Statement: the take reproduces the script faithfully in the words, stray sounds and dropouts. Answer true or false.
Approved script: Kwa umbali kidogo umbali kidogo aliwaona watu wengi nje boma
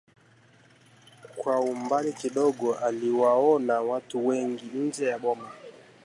false